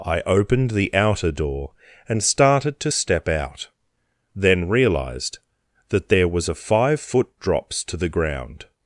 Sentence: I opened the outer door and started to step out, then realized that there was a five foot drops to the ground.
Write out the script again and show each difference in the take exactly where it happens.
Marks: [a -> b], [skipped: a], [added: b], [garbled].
I opened the outer door and started to step out, then realized that there was a five foot drops to the ground.